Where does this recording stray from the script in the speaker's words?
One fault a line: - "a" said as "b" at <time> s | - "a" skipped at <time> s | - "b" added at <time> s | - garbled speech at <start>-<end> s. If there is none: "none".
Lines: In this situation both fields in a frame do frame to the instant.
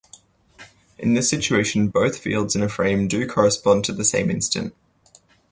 - "frame" said as "correspond" at 3.3 s
- "same" added at 4.0 s